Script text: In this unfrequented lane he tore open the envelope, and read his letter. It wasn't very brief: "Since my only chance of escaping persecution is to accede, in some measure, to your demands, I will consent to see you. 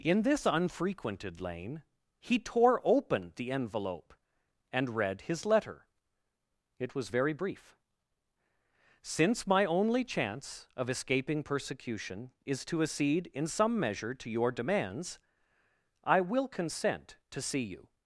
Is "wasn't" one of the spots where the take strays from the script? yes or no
yes